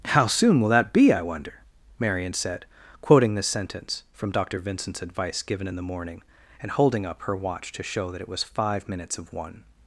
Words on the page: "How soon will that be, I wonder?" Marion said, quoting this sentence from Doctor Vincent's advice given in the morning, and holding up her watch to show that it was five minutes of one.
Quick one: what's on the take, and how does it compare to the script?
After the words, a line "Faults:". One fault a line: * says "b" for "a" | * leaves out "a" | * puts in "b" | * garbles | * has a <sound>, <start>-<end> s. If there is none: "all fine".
"How soon will that be, I wonder?" Marion said, quoting this sentence from Doctor Vincent's advice given in the morning, and holding up her watch to show that it was five minutes of one.
Faults:
all fine